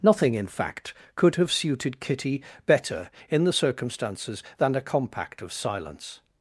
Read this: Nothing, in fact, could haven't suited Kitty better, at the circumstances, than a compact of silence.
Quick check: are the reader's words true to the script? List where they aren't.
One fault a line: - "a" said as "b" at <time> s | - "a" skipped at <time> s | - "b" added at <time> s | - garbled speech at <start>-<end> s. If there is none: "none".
- "haven't" said as "have" at 1.4 s
- "at" said as "in" at 3.3 s